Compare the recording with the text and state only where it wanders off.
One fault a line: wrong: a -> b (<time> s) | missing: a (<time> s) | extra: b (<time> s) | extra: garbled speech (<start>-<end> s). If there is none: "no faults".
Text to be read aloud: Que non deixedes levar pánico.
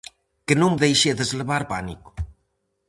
no faults